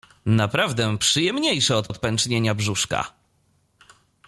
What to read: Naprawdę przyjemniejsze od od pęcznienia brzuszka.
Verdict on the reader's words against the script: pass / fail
pass